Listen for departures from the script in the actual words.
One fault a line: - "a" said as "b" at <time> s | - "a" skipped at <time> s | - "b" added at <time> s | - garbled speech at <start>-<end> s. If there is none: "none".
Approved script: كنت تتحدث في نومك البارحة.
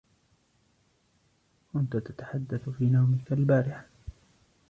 none